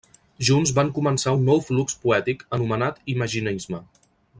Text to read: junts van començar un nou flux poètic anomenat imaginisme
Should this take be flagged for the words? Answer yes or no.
no